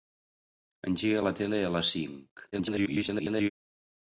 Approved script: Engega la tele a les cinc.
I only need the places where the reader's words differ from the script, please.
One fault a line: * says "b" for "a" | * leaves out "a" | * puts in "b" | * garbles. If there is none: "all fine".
* garbles